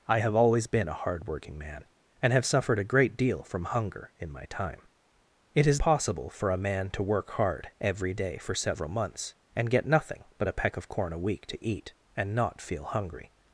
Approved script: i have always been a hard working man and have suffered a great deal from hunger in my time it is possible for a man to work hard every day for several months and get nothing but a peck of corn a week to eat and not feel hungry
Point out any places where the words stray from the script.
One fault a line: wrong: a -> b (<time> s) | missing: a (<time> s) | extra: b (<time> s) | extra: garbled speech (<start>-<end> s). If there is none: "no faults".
no faults